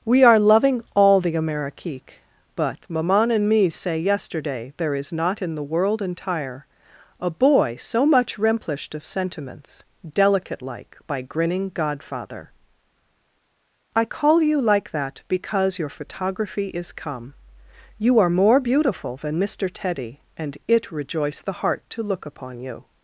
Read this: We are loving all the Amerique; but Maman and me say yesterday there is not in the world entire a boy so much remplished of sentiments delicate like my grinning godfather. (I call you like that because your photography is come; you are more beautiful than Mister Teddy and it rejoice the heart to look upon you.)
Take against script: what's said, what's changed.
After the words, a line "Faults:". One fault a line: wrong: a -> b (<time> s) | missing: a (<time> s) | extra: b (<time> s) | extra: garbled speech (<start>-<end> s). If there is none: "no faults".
We are loving all the Amerique; but Maman and me say yesterday there is not in the world entire a boy so much remplished of sentiments delicate like by grinning godfather. (I call you like that because your photography is come; you are more beautiful than Mister Teddy and it rejoice the heart to look upon you.)
Faults:
wrong: my -> by (11.1 s)